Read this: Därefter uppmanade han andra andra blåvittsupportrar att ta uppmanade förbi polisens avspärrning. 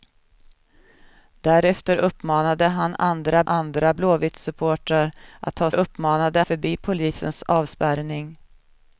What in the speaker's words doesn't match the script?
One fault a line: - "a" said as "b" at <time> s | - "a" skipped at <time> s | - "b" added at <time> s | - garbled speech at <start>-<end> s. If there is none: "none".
none